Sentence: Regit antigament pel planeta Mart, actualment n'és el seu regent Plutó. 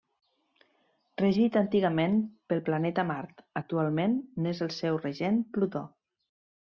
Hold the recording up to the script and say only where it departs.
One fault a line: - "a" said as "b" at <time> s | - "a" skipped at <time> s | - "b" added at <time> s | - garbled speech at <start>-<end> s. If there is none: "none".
none